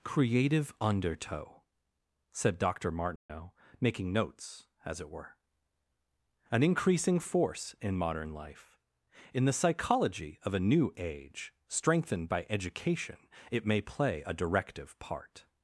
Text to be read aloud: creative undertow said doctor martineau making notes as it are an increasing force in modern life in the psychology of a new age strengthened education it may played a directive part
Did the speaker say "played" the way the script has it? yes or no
no